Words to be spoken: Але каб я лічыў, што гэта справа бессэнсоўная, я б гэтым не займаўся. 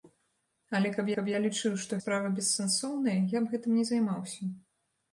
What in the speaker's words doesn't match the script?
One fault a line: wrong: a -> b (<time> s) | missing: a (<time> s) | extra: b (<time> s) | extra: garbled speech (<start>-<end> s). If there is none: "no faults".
extra: каб (1.1 s)
missing: гэта (2.0 s)